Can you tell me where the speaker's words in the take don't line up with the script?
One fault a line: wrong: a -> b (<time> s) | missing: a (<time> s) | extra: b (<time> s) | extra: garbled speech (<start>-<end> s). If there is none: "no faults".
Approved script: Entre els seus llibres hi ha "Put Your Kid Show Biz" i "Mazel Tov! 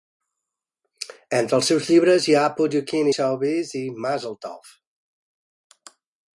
no faults